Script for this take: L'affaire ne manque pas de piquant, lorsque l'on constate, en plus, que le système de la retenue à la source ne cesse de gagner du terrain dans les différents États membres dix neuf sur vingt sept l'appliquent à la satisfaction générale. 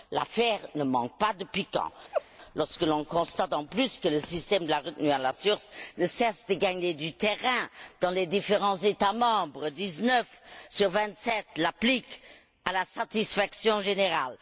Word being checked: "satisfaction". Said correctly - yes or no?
yes